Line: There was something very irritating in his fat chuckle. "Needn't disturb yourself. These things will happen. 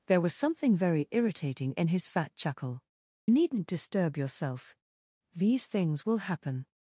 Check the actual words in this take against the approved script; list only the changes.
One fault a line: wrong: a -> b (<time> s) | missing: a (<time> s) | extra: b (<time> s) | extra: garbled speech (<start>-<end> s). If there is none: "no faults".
no faults